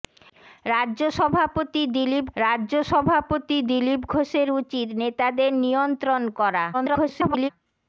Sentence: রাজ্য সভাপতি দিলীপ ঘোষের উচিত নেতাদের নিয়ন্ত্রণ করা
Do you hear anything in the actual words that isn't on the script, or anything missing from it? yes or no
yes